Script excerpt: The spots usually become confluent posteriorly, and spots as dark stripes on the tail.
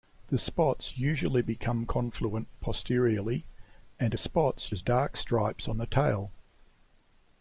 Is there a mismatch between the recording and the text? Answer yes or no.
no